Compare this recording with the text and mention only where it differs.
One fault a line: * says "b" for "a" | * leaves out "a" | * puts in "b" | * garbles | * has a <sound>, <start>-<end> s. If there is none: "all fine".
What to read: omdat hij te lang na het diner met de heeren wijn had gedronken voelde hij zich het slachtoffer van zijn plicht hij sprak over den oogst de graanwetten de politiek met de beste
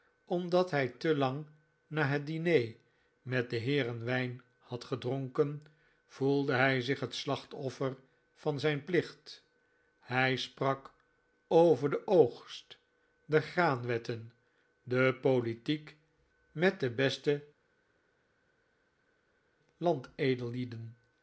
all fine